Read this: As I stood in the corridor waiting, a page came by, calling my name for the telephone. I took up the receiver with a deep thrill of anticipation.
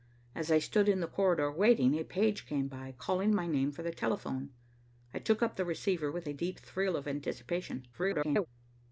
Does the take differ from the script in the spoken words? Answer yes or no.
yes